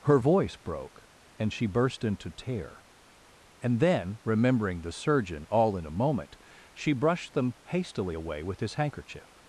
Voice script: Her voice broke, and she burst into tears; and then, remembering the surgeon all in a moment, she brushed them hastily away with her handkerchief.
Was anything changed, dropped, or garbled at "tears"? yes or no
yes